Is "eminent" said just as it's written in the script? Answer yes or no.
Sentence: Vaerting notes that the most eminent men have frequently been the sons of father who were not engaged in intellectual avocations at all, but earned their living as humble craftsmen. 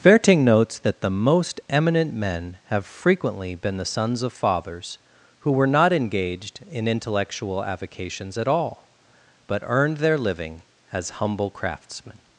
yes